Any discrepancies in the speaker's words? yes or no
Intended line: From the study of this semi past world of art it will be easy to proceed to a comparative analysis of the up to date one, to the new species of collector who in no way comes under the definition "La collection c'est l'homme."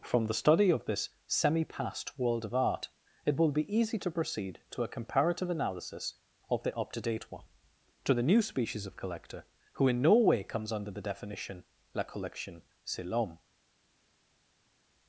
no